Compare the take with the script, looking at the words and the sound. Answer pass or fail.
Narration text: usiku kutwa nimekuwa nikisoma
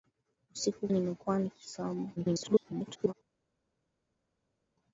fail